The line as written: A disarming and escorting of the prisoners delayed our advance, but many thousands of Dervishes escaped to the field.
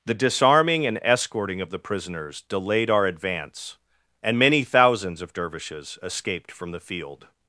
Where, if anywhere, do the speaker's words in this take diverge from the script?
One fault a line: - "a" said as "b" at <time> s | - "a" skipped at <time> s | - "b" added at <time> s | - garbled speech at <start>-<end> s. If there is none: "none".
- "A" said as "The" at 0.0 s
- "but" said as "and" at 4.2 s
- "to" said as "from" at 6.5 s